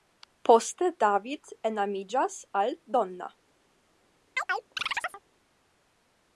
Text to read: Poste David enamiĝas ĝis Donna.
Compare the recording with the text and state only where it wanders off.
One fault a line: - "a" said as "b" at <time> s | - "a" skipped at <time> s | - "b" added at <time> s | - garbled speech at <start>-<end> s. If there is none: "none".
- "ĝis" said as "al" at 2.6 s